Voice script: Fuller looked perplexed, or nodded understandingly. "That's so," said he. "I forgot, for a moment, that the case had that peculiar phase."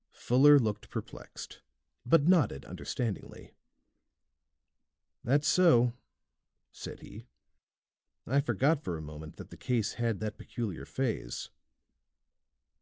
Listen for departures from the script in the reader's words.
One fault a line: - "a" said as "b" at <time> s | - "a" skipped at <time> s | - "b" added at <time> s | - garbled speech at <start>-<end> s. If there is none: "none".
- "or" said as "but" at 2.1 s